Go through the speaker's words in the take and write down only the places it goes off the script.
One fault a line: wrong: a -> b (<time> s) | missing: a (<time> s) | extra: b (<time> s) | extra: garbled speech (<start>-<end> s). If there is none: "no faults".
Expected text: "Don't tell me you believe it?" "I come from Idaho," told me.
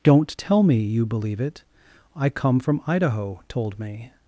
no faults